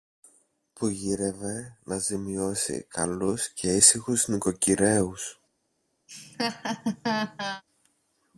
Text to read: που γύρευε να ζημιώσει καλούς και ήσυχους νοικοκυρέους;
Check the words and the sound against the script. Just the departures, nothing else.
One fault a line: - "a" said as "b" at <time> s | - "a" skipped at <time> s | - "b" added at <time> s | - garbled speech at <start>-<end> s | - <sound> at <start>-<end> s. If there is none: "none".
- laugh at 6.1-7.6 s